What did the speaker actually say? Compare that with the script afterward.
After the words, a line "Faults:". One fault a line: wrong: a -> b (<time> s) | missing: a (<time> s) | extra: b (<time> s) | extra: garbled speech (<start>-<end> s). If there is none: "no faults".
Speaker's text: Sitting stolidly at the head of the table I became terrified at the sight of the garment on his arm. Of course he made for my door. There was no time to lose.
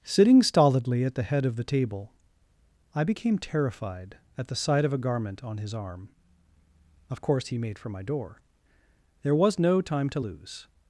Sitting stolidly at the head of the table I became terrified at the sight of a garment on his arm. Of course he made for my door. There was no time to lose.
Faults:
wrong: the -> a (4.9 s)